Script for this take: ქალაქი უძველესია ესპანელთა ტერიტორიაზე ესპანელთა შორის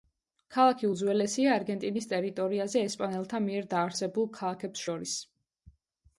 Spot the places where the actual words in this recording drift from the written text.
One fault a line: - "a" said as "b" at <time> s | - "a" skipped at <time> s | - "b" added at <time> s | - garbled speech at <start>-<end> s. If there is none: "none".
- "ესპანელთა" said as "არგენტინის" at 1.6 s
- "მიერ დაარსებულ ქალაქებს" added at 3.5 s